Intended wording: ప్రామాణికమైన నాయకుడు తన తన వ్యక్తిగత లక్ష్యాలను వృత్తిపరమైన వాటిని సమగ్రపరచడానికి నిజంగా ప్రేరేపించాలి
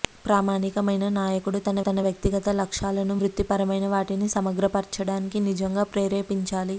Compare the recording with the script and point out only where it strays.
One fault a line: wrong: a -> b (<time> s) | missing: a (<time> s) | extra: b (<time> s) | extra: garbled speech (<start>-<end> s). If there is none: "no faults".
no faults